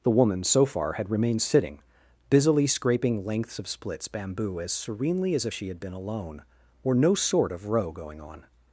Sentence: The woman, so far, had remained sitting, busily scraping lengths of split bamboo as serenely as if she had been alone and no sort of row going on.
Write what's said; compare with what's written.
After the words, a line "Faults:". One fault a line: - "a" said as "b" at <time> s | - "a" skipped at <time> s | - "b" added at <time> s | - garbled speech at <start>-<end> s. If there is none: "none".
The woman, so far, had remained sitting, busily scraping lengths of splits bamboo as serenely as if she had been alone or no sort of row going on.
Faults:
- "split" said as "splits" at 3.7 s
- "and" said as "or" at 6.8 s